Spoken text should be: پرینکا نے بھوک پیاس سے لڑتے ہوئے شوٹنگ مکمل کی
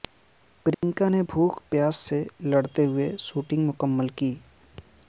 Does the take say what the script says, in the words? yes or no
yes